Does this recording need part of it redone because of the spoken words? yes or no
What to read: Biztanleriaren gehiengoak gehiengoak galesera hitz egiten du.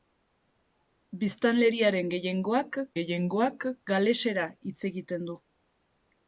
no